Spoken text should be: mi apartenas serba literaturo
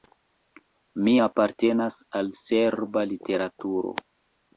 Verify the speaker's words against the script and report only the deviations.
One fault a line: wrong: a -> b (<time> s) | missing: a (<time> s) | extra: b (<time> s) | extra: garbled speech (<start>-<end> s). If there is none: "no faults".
extra: al (2.2 s)